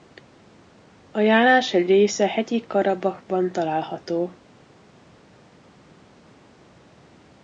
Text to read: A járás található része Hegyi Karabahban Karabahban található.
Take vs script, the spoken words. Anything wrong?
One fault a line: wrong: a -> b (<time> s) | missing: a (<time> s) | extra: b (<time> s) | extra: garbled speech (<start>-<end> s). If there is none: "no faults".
wrong: található -> egy (1.7 s)
missing: Karabahban (3.5 s)